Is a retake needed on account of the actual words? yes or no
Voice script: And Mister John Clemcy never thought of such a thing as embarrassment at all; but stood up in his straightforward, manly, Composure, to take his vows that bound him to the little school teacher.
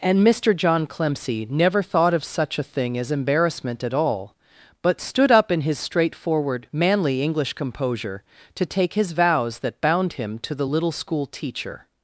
yes